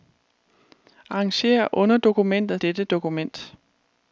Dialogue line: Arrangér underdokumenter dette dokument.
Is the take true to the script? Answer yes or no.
yes